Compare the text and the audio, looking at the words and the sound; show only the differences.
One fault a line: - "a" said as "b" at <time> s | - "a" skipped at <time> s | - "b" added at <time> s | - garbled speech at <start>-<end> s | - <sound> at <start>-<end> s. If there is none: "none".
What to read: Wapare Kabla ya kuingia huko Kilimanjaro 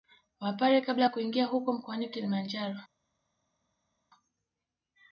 - "mkoani" added at 1.7 s